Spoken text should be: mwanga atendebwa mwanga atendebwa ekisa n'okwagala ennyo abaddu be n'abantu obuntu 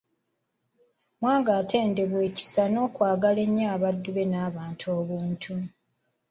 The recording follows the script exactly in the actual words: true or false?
false